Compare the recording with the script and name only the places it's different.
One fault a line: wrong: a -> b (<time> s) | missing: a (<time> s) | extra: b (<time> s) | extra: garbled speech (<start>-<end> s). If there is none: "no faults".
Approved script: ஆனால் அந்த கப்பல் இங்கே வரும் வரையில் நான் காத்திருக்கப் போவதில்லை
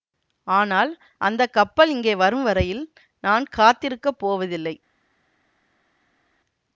no faults